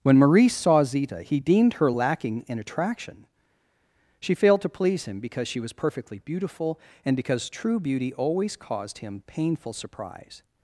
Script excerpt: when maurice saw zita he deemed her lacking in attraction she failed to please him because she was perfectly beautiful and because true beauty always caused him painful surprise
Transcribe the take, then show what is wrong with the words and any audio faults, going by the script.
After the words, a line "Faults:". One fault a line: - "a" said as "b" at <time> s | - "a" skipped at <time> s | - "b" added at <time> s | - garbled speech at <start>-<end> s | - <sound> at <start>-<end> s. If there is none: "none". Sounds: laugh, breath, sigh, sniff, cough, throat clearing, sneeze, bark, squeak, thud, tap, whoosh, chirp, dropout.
when maurice saw zita he deemed her lacking in attraction she failed to please him because she was perfectly beautiful and because true beauty always caused him painful surprise
Faults:
none